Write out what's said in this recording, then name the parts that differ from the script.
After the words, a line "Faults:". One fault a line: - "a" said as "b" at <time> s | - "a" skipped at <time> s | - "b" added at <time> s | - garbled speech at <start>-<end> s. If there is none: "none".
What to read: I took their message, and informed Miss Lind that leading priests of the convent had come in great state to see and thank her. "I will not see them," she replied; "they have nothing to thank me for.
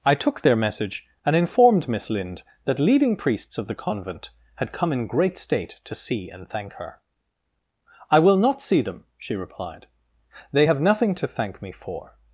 I took their message, and informed Miss Lind that leading priests of the convent had come in great state to see and thank her. "I will not see them," she replied; "they have nothing to thank me for.
Faults:
none